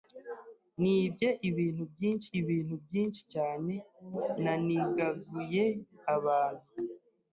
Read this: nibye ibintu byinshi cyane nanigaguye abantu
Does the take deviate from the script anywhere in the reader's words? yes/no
yes